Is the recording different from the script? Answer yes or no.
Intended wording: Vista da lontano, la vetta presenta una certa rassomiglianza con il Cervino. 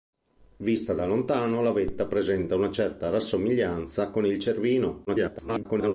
yes